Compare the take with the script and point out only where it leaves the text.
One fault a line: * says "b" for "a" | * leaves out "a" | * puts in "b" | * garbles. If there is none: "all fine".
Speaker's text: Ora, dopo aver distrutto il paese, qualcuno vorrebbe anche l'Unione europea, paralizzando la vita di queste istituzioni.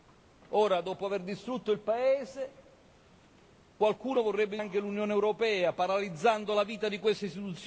all fine